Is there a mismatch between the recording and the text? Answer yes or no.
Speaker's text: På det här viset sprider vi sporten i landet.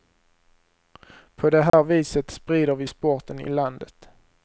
no